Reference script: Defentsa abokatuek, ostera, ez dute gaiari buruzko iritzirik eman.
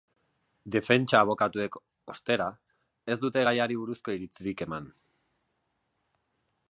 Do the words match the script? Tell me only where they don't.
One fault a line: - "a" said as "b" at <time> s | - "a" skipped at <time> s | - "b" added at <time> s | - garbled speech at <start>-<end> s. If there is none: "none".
none